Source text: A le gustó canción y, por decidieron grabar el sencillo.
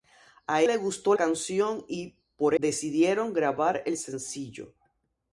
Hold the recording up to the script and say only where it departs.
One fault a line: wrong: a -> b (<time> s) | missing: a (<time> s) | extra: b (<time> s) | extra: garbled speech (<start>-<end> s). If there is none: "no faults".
no faults